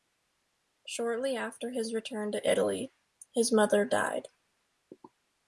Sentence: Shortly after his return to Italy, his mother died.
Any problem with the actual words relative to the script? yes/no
no